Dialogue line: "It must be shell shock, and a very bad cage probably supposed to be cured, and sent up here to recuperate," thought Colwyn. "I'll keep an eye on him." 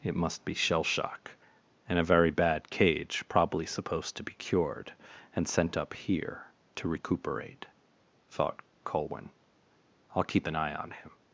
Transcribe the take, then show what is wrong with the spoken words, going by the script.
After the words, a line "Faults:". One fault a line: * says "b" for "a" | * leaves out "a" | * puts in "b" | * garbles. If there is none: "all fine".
"It must be shell shock, and a very bad cage probably supposed to be cured, and sent up here to recuperate," thought Colwyn. "I'll keep an eye on him."
Faults:
all fine